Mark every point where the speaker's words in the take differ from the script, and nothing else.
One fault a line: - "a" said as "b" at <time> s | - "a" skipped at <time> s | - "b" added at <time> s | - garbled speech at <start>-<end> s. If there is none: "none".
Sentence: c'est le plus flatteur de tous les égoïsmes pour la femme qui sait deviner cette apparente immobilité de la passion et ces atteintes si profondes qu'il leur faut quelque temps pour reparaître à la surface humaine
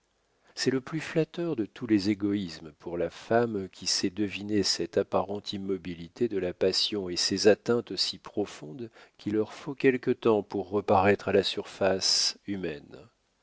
none